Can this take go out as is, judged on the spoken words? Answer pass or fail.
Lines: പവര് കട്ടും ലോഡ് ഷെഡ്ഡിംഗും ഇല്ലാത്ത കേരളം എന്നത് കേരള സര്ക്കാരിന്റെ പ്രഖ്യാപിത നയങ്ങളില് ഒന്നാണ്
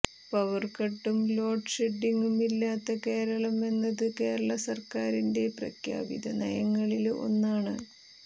pass